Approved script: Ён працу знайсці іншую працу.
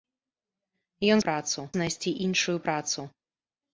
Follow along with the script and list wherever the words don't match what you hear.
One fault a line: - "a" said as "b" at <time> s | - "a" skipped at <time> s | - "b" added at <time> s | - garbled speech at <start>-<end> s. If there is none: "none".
none